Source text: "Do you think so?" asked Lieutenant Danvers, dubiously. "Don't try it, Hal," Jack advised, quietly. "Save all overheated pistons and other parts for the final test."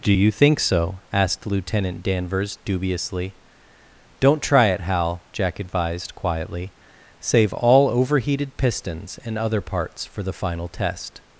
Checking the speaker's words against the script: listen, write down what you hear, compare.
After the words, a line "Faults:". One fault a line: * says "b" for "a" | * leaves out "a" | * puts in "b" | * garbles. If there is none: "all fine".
"Do you think so?" asked Lieutenant Danvers, dubiously. "Don't try it, Hal," Jack advised, quietly. "Save all overheated pistons and other parts for the final test."
Faults:
all fine